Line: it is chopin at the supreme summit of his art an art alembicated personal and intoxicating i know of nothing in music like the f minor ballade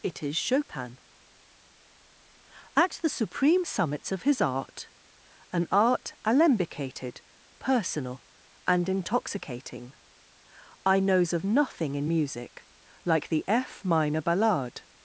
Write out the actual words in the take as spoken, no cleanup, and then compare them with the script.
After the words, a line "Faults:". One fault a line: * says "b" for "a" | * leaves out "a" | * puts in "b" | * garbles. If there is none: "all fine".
it is chopin at the supreme summits of his art an art alembicated personal and intoxicating i knows of nothing in music like the f minor ballade
Faults:
* says "summits" for "summit"
* says "knows" for "know"